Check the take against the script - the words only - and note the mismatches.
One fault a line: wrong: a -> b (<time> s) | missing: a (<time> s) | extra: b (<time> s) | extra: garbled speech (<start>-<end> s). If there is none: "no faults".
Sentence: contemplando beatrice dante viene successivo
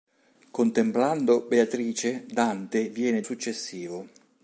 no faults